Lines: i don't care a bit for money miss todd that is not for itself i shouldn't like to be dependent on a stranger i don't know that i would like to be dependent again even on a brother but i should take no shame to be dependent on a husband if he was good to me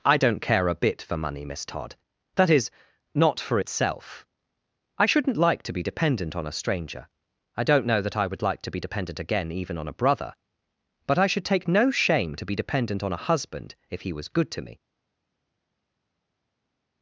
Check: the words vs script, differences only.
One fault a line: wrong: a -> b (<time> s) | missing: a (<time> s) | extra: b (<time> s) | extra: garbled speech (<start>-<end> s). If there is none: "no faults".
no faults